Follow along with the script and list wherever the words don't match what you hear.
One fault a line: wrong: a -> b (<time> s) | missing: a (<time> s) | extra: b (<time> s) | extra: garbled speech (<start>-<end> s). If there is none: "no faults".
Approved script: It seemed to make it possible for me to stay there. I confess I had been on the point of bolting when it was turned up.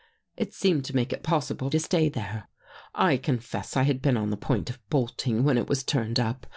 missing: for me (1.7 s)